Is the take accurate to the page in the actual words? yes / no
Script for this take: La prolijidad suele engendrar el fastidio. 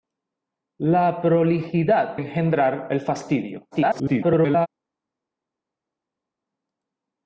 no